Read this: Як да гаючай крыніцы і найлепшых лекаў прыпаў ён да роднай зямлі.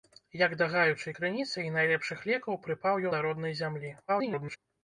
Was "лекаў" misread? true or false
false